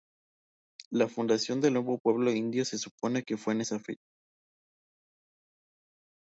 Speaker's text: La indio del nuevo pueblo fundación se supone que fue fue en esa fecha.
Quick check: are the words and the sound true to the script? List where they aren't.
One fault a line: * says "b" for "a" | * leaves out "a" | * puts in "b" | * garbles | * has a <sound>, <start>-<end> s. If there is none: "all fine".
* says "fundación" for "indio"
* says "indio" for "fundación"
* leaves out "fue"